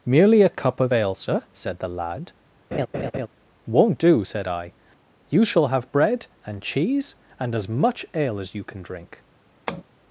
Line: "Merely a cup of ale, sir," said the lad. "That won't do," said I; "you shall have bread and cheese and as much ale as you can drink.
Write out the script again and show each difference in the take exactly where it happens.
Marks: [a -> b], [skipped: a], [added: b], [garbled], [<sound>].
"Merely a cup of ale, sir," said the lad. [skipped: "That] [laugh] won't do," said I; "you shall have bread and cheese and as much ale as you can drink. [tap]